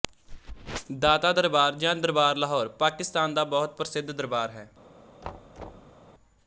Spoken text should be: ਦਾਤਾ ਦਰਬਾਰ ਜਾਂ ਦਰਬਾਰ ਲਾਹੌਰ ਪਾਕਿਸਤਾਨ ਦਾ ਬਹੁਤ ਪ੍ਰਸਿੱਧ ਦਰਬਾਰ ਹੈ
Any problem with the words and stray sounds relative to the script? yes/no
yes